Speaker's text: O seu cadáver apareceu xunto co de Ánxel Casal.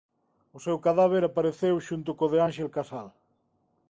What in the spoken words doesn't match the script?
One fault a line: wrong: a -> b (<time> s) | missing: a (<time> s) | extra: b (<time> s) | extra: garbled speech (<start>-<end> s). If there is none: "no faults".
no faults